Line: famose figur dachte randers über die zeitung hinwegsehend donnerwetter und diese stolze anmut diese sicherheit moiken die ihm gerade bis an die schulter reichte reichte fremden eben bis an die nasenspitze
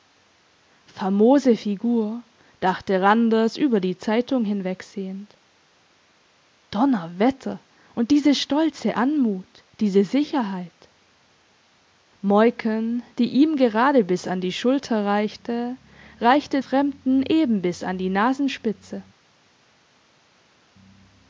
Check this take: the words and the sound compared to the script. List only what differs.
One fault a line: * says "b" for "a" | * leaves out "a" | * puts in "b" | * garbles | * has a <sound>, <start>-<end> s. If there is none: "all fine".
all fine